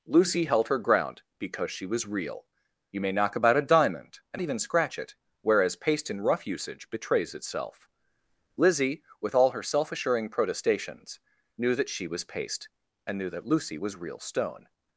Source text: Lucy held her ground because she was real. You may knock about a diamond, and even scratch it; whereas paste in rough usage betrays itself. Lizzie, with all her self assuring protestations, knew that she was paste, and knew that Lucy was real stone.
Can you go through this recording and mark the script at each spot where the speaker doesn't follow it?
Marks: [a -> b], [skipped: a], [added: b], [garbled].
Lucy held her ground because she was real. You may knock about a diamond, and even scratch it; whereas paste in rough usage betrays itself. Lizzie, with all her self assuring protestations, knew that she was paste, and knew that Lucy was real stone.